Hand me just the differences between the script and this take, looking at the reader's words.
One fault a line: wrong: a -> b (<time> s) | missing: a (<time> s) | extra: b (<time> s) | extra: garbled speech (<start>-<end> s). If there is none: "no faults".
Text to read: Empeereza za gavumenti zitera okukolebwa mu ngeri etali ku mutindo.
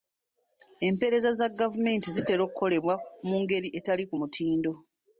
no faults